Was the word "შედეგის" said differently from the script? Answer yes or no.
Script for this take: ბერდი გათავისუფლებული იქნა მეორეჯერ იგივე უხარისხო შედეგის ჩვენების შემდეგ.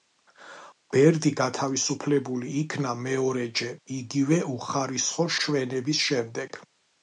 yes